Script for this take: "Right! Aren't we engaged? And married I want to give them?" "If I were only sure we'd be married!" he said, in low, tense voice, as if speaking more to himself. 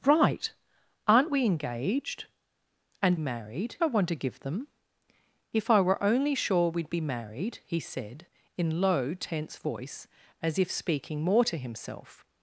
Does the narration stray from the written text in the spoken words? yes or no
no